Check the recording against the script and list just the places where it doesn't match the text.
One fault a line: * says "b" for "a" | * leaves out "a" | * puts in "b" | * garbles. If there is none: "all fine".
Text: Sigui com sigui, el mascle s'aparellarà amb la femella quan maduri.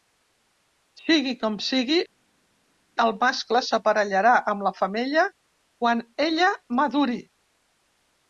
* puts in "ella"